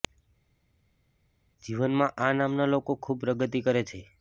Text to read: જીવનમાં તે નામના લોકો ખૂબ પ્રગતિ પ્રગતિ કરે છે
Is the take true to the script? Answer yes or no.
no